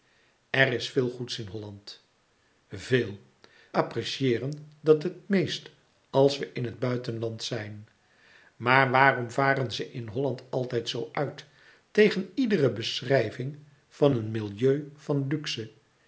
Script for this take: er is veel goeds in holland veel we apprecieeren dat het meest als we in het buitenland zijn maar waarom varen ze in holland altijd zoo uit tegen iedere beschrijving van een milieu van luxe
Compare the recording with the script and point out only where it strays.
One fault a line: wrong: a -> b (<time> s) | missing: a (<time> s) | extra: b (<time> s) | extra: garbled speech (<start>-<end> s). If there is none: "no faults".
missing: we (3.2 s)